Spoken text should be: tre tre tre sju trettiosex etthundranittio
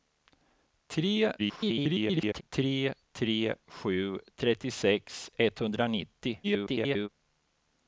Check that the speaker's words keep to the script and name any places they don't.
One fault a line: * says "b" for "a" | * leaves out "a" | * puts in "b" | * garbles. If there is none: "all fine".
* garbles
* garbles